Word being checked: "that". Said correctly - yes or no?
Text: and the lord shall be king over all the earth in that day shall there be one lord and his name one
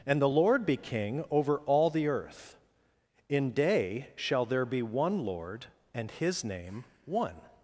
no